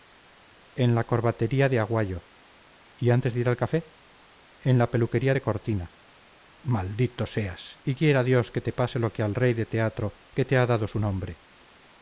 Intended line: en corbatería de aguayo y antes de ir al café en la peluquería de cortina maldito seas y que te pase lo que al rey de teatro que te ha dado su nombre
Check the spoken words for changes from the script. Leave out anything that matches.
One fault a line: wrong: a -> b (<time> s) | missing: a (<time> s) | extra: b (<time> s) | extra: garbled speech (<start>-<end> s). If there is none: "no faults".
extra: la (0.9 s)
extra: quiera dios (8.0 s)